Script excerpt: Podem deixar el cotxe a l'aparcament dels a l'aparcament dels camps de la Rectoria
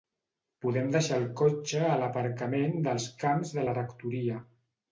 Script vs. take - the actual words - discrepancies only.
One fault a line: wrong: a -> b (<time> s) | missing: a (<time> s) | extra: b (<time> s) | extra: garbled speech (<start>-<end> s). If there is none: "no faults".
missing: a l'aparcament dels (3.1 s)